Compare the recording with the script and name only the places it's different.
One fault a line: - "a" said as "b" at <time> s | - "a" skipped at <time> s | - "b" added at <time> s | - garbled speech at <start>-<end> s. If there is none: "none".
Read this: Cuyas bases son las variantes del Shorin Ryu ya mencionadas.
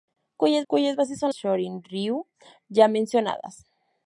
- "cuyas" added at 0.7 s
- "las variantes del" skipped at 1.3 s